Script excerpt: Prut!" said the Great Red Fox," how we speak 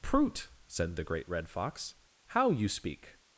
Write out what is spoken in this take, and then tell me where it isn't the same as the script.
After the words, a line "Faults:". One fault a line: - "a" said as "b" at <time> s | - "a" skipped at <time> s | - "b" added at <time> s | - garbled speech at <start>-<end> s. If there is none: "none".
Prut!" said the Great Red Fox," how you speak
Faults:
- "we" said as "you" at 2.5 s